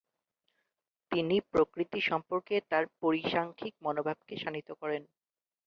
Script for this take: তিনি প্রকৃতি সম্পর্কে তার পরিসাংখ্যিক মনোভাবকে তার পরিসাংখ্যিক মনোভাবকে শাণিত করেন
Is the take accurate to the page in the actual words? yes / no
no